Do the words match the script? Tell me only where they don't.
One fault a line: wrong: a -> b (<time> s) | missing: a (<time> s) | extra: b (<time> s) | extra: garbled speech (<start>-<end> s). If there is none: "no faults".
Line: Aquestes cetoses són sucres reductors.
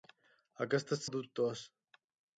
missing: cetoses són sucres (1.0 s)